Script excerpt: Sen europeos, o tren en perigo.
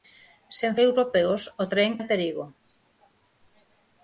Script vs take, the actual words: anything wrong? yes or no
no